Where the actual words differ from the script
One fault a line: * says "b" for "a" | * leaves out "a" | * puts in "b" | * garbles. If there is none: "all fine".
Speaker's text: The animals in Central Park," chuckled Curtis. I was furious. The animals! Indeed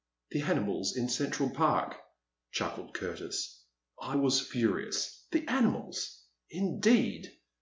all fine